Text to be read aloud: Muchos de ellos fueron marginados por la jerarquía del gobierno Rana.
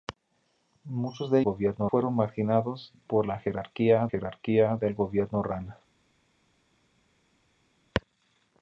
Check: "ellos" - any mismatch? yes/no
yes